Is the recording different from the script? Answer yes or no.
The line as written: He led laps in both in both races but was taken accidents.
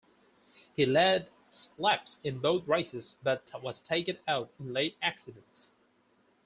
yes